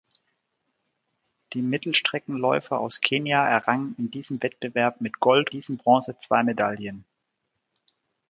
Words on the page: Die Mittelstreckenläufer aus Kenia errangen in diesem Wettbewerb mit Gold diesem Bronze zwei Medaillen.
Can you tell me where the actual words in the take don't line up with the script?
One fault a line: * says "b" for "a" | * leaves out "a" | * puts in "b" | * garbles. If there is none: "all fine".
all fine